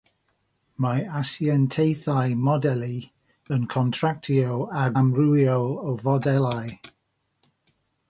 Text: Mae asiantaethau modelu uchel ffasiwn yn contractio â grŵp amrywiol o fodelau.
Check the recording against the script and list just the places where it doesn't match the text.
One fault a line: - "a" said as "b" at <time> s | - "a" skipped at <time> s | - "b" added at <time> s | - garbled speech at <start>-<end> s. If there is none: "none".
- "uchel ffasiwn" skipped at 2.9 s
- "grŵp" skipped at 4.9 s